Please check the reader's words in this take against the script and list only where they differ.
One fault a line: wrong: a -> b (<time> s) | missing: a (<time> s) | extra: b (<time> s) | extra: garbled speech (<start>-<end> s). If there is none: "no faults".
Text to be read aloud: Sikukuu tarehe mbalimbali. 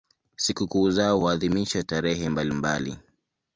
extra: zao huadhimishwa (0.9 s)